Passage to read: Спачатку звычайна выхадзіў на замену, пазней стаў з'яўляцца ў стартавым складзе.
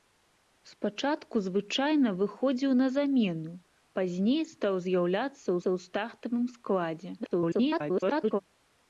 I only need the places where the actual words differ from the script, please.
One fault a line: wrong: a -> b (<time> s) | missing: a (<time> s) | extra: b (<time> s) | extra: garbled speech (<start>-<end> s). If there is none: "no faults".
extra: ў (5.6 s)
extra: garbled speech (7.2-8.4 s)